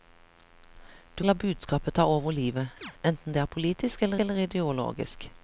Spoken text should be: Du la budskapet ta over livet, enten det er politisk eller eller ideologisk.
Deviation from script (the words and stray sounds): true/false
true